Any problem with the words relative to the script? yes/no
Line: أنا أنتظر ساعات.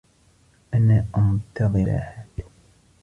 no